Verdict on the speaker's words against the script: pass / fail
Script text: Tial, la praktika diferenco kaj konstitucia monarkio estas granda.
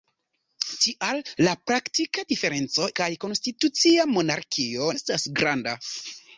pass